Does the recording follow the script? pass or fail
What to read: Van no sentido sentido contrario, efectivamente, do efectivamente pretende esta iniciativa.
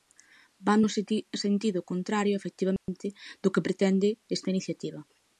fail